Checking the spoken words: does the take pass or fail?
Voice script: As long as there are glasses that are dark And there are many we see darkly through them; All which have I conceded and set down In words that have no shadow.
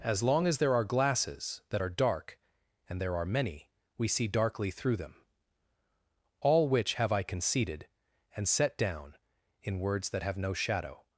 pass